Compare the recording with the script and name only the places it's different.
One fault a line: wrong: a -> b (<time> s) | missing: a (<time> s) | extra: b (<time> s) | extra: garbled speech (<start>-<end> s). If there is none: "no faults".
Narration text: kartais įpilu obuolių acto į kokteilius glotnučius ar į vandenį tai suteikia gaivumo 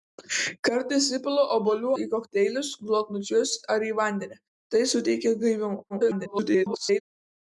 missing: acto (1.9 s)
extra: garbled speech (5.9-7.0 s)